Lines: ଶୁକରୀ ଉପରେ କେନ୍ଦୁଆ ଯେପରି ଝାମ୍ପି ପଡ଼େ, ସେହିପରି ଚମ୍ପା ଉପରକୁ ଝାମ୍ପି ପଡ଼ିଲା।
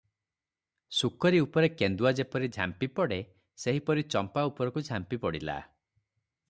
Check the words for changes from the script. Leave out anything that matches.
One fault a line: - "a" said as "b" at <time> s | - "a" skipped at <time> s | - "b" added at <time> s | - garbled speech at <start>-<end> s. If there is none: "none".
none